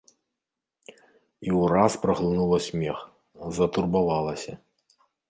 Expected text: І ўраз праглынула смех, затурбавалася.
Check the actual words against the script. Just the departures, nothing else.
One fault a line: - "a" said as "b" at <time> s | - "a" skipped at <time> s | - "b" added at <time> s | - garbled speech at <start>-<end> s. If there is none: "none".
none